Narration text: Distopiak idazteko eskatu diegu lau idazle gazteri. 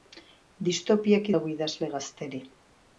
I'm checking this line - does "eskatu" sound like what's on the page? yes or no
no